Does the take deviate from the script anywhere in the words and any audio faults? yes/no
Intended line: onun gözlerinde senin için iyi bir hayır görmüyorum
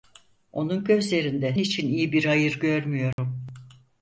yes